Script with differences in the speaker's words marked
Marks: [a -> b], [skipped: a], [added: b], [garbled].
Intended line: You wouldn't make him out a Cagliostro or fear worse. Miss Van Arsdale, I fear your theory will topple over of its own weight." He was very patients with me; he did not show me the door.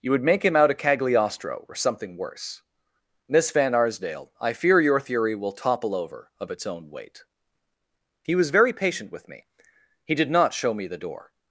You [wouldn't -> would] make him out a Cagliostro or [fear -> something] worse. Miss Van Arsdale, I fear your theory will topple over of its own weight." He was very [patients -> patient] with me; he did not show me the door.